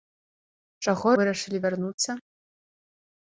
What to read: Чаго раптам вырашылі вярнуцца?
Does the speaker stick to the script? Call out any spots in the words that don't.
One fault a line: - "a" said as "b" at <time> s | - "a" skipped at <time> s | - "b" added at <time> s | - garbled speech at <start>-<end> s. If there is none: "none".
- "раптам" skipped at 1.1 s